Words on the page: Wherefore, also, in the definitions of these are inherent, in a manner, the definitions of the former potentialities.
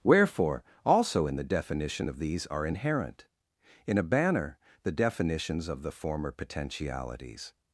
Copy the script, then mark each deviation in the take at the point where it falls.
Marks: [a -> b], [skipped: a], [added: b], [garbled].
Wherefore, also, in the [definitions -> definition] of these are inherent, in a [manner, -> banner] the definitions of the former potentialities.